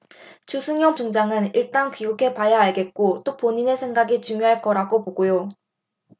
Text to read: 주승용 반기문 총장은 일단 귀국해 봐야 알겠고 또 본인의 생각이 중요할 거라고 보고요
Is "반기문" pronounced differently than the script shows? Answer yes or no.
yes